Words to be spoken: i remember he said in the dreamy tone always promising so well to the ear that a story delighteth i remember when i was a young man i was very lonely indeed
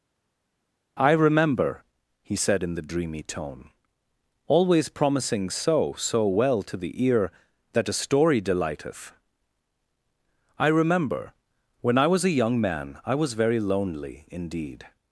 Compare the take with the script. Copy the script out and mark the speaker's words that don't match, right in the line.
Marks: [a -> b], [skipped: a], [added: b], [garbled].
i remember he said in the dreamy tone always promising so [added: so] well to the ear that a story delighteth i remember when i was a young man i was very lonely indeed